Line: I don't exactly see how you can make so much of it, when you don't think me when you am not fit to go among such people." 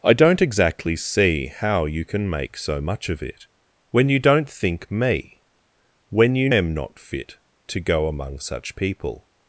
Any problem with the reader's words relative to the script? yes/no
no